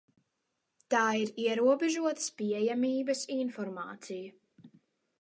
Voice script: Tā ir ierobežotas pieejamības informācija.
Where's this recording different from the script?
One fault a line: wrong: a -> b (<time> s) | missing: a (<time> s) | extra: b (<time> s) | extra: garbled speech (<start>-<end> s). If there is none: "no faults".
no faults